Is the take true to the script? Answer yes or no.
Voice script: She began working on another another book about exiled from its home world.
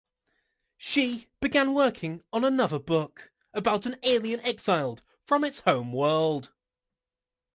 no